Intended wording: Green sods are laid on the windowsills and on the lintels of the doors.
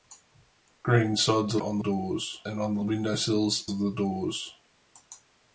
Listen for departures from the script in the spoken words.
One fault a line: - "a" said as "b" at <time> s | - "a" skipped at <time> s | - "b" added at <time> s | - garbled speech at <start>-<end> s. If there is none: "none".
- "laid" skipped at 1.6 s
- "windowsills" said as "doors" at 1.8 s
- "lintels" said as "windowsills" at 2.8 s